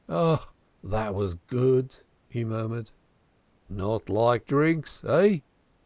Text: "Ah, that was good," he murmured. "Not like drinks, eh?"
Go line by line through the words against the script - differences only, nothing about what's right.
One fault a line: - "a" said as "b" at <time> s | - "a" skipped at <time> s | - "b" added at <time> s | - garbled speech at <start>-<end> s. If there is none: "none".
none